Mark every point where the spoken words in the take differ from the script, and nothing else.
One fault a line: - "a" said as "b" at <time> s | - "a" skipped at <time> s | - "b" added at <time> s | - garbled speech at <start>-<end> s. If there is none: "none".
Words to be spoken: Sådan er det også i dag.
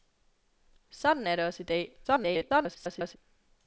- garbled speech at 2.0-3.2 s